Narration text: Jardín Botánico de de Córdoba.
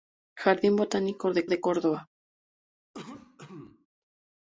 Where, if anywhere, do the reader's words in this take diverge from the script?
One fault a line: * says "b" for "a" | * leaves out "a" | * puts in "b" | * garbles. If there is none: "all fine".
all fine